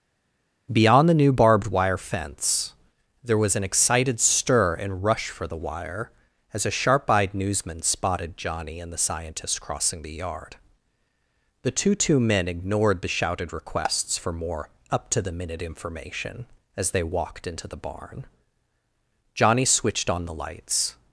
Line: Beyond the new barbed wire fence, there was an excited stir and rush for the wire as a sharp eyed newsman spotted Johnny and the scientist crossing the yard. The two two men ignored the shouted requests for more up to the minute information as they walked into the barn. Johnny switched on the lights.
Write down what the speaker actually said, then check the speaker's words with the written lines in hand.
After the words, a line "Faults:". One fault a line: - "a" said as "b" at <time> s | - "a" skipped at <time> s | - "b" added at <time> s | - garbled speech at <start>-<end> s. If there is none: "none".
Beyond the new barbed wire fence, there was an excited stir and rush for the wire as a sharp eyed newsman spotted Johnny and the scientist crossing the yard. The two two men ignored the shouted requests for more up to the minute information as they walked into the barn. Johnny switched on the lights.
Faults:
none